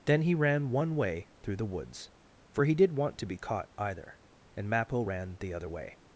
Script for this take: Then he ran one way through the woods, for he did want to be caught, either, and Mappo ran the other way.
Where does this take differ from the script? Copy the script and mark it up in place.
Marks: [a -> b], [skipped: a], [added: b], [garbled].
Then he ran one way through the woods, for he did want to be caught, either, and Mappo ran the other way.